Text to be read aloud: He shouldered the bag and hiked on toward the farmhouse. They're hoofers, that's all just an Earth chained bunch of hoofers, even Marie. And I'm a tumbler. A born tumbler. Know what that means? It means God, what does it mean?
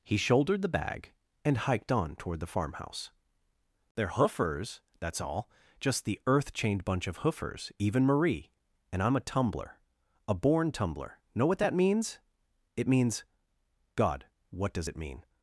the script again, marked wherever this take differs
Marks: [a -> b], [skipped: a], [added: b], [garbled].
He shouldered the bag and hiked on toward the farmhouse. They're hoofers, that's all just [an -> the] Earth chained bunch of hoofers, even Marie. And I'm a tumbler. A born tumbler. Know what that means? It means God, what does it mean?